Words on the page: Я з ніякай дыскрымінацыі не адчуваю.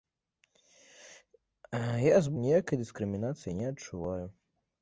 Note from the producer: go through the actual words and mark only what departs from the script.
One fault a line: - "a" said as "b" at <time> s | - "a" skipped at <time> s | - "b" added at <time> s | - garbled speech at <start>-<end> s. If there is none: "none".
none